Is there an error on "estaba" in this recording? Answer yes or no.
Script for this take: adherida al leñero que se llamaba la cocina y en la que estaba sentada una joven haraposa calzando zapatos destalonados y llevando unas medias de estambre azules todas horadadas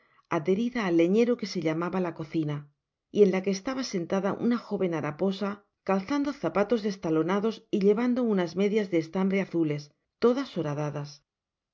no